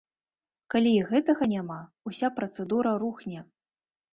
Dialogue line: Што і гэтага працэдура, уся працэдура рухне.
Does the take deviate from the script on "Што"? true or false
true